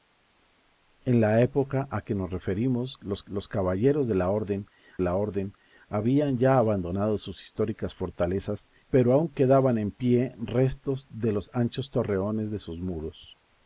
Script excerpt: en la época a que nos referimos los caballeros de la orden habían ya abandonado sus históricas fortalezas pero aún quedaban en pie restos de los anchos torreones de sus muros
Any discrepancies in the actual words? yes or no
yes